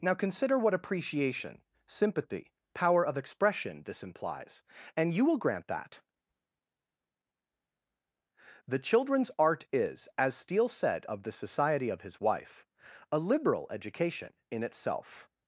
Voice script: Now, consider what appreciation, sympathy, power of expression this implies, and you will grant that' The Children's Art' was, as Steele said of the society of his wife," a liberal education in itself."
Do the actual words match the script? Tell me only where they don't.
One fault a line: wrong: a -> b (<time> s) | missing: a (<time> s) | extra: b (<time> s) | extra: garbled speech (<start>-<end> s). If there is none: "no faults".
wrong: was -> is (9.7 s)